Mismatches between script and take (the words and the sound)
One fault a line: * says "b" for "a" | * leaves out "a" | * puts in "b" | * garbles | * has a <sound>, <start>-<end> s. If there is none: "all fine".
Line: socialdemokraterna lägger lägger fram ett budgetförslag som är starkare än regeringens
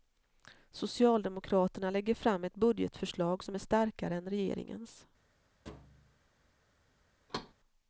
* leaves out "lägger"
* has a thud, 5.7-6.2 s
* has a thud, 7.3-7.5 s